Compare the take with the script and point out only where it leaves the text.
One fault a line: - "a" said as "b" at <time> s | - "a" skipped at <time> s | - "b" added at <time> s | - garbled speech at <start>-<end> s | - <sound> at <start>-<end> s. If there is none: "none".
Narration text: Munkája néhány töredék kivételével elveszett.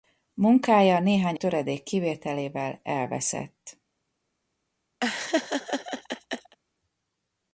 - laugh at 5.0-6.6 s